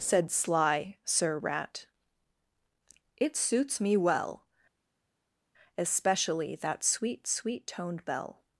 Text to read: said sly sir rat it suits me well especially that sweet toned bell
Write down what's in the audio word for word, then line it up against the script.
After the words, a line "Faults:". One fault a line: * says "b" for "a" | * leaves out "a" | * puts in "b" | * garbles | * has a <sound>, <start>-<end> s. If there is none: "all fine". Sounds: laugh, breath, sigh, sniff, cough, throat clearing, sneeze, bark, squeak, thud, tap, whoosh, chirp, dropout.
said sly sir rat it suits me well especially that sweet sweet toned bell
Faults:
* puts in "sweet"